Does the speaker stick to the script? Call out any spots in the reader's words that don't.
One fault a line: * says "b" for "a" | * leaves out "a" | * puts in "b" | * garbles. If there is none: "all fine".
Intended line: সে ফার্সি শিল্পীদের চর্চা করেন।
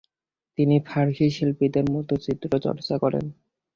* says "তিনি" for "সে"
* puts in "মতো চিত্র"